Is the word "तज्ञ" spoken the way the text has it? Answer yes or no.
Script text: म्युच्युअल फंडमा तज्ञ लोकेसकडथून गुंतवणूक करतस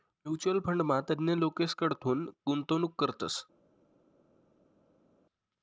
yes